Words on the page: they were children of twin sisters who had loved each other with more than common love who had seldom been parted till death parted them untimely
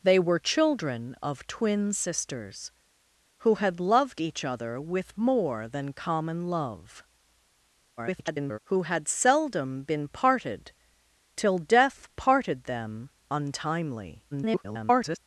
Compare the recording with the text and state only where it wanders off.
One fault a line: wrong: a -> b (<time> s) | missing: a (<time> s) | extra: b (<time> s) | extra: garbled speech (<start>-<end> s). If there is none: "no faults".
extra: garbled speech (8.0-8.6 s)
extra: garbled speech (14.3-15.2 s)